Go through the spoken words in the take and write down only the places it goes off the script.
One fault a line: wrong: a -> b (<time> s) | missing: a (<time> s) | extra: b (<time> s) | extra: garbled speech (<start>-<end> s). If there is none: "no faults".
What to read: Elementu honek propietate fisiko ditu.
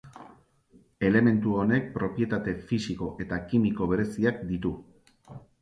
extra: eta kimiko bereziak (3.3 s)